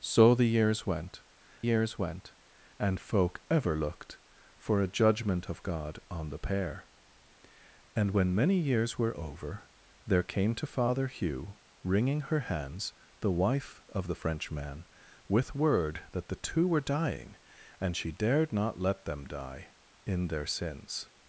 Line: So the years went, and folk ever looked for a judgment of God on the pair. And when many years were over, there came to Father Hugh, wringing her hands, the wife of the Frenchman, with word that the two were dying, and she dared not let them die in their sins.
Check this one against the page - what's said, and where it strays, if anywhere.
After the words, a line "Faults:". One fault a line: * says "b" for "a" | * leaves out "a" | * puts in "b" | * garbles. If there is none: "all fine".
So the years went years went, and folk ever looked for a judgment of God on the pair. And when many years were over, there came to Father Hugh, wringing her hands, the wife of the Frenchman, with word that the two were dying, and she dared not let them die in their sins.
Faults:
* puts in "years went"